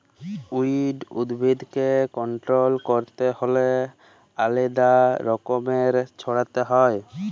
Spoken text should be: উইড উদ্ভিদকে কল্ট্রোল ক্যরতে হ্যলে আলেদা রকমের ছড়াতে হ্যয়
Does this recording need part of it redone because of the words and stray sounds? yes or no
no